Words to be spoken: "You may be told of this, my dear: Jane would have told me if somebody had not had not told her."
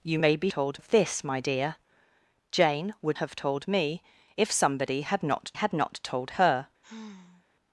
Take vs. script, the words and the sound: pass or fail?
fail